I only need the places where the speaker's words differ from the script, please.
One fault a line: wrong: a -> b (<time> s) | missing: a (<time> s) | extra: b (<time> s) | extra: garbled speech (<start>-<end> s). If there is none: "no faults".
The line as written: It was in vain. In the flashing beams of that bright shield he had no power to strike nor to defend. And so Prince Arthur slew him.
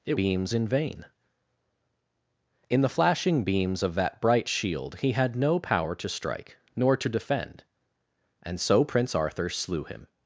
wrong: was -> beams (0.1 s)